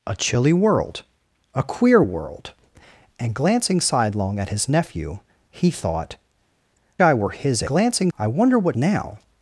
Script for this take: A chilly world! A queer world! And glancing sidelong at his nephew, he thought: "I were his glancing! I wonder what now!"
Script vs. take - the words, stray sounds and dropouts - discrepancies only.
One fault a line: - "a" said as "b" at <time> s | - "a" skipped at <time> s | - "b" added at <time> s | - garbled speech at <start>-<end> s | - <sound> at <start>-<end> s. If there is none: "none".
none